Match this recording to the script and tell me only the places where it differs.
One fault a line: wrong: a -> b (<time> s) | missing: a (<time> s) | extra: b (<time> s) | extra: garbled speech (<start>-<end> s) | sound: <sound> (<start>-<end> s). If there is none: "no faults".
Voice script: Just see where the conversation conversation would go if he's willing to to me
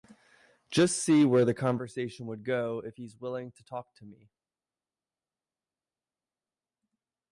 missing: conversation (2.2 s)
extra: talk (3.6 s)